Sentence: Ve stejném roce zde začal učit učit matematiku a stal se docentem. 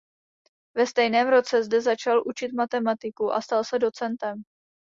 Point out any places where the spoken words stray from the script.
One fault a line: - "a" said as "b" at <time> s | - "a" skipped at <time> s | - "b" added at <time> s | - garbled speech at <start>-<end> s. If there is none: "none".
- "učit" skipped at 2.5 s